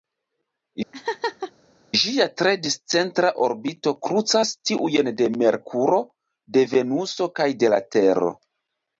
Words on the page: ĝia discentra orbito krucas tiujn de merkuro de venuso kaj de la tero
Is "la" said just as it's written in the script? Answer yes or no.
yes